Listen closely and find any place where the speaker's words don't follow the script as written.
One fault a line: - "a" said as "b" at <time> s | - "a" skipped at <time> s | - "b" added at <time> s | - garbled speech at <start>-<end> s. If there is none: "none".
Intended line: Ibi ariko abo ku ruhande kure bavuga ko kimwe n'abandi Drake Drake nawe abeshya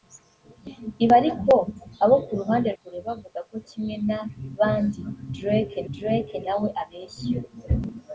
none